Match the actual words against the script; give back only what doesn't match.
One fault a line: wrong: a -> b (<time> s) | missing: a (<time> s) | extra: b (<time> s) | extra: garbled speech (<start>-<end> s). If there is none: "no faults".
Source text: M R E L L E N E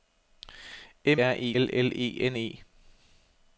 no faults